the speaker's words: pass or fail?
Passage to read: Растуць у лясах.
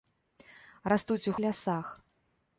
pass